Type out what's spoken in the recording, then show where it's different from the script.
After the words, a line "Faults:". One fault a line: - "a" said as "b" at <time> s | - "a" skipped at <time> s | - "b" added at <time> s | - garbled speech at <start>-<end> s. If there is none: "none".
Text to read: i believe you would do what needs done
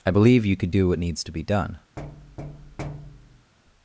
i believe you could do what needs to be done
Faults:
- "would" said as "could" at 0.5 s
- "to be" added at 1.2 s